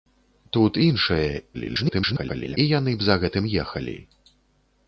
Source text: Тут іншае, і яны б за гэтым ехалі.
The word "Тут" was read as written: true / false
true